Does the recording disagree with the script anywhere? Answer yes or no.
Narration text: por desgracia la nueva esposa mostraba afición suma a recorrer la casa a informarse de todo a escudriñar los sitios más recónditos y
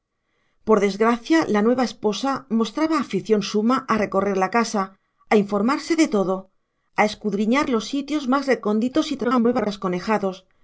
yes